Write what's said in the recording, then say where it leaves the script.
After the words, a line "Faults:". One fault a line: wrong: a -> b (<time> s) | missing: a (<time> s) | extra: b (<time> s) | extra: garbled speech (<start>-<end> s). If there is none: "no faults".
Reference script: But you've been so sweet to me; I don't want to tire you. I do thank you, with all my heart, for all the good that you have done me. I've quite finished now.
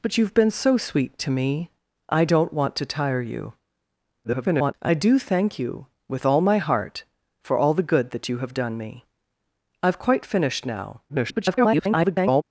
But you've been so sweet to me; I don't want to tire you. [garbled] I do thank you, with all my heart, for all the good that you have done me. I've quite finished now. [garbled]
Faults:
extra: garbled speech (4.2-4.7 s)
extra: garbled speech (11.1-12.4 s)